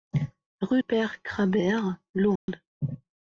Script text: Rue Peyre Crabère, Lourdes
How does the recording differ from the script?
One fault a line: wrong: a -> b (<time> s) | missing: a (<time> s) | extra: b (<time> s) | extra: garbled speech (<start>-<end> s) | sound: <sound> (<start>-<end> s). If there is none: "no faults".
sound: dropout (2.4-2.5 s)